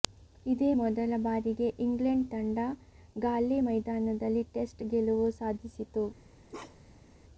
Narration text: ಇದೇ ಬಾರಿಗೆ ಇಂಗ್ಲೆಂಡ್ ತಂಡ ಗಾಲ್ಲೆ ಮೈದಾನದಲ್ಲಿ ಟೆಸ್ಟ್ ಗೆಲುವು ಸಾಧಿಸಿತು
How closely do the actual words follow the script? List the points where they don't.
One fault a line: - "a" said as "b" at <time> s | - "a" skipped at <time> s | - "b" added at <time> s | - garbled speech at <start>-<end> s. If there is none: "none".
- "ಮೊದಲ" added at 0.7 s